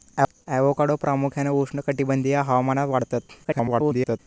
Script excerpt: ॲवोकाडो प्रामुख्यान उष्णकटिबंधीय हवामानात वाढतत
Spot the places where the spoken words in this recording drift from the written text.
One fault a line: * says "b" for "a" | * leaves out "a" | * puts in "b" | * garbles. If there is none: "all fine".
* garbles